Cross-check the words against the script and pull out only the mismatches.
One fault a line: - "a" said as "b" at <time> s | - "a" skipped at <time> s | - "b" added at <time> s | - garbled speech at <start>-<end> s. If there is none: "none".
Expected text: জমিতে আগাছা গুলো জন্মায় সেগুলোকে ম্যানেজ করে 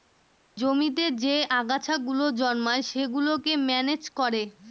- "যে" added at 1.2 s